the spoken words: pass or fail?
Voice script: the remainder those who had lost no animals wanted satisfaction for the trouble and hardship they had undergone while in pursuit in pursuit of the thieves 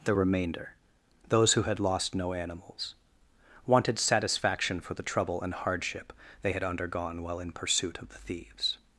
fail